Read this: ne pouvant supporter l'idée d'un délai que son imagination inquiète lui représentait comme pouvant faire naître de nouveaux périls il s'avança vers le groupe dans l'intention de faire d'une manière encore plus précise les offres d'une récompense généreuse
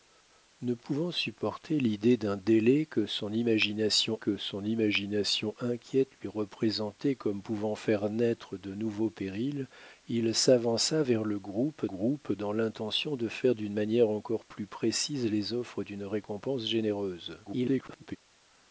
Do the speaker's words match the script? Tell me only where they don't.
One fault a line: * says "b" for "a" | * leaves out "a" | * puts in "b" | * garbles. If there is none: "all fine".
* puts in "que son imagination"
* puts in "groupe"
* garbles